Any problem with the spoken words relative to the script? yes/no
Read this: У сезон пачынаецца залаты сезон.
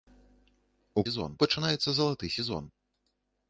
no